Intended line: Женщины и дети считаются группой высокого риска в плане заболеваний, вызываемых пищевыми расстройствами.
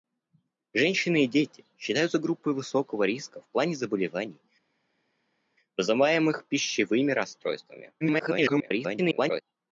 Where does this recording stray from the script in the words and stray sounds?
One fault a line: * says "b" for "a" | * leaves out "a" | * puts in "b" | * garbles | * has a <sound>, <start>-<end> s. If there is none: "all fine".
* garbles